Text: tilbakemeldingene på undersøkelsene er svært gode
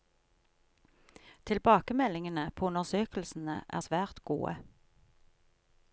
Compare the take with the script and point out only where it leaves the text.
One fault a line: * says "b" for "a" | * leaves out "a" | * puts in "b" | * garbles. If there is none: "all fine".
all fine